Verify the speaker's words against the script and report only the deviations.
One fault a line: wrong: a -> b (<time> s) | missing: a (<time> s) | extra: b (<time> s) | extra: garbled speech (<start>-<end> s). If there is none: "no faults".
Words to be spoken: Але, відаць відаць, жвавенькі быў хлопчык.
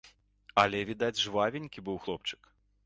missing: відаць (1.2 s)